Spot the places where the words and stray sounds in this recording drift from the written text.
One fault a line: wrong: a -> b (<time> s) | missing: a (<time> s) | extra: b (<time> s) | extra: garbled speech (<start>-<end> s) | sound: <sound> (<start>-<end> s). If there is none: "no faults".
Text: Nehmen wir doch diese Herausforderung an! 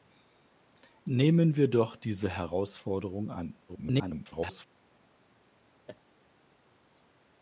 extra: garbled speech (3.7-4.7 s)
sound: laugh (5.9-6.0 s)